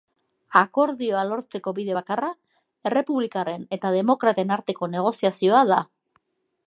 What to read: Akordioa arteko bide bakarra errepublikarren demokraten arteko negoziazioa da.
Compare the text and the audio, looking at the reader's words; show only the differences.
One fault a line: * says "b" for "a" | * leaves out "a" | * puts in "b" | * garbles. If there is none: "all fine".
* says "lortzeko" for "arteko"
* puts in "eta"